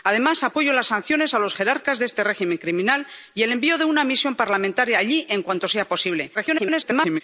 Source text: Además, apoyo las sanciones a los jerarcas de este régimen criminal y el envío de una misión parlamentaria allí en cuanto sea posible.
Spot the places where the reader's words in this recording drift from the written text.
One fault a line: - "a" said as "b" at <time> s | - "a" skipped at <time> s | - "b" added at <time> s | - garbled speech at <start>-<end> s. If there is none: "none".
- garbled speech at 6.3-7.2 s